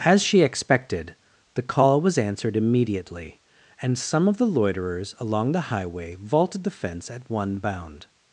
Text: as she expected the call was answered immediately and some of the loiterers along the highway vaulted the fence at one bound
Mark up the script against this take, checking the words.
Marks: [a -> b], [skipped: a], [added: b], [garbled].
as she expected the call was answered immediately and some of the loiterers along the highway vaulted the fence at one bound